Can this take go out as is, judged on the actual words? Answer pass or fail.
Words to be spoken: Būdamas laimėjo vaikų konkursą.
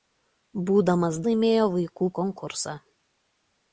pass